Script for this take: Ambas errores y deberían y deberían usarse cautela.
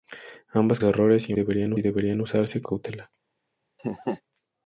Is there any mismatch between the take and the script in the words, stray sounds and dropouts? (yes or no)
yes